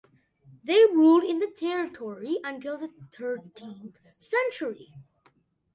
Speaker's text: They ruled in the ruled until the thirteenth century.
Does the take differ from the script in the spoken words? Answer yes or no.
yes